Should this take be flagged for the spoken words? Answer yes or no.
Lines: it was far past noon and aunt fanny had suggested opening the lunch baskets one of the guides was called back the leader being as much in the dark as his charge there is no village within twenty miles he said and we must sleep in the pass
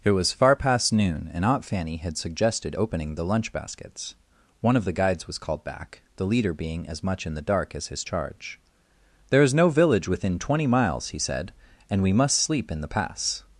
no